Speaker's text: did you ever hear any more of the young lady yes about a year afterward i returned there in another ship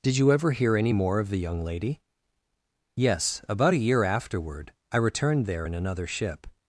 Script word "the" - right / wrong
right